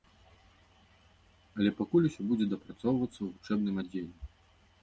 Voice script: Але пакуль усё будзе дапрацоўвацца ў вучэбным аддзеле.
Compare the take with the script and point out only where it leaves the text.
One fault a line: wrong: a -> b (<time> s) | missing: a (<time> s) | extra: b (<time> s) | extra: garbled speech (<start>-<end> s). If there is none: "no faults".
no faults